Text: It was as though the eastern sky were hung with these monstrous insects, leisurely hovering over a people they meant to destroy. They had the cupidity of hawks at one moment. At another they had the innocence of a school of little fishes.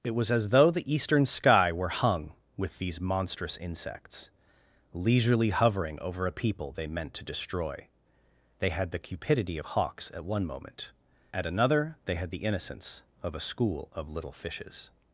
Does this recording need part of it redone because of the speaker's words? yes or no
no